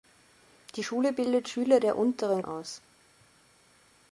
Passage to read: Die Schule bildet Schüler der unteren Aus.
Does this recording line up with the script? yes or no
yes